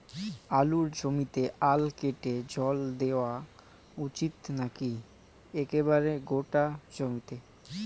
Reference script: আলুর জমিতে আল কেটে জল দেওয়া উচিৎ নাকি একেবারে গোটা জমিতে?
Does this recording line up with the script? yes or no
yes